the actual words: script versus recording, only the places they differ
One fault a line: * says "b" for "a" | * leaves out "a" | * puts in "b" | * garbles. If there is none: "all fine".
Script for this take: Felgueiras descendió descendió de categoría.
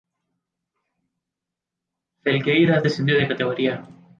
* leaves out "descendió"